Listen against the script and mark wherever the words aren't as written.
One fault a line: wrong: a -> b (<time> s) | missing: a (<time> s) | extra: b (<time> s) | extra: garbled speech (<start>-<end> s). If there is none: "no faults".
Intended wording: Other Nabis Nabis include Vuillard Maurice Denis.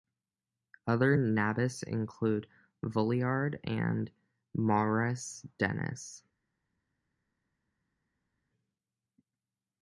missing: Nabis (1.8 s)
extra: and (3.6 s)